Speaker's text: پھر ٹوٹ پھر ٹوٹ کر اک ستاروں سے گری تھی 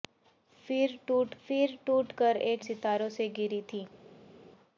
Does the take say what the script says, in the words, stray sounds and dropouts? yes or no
yes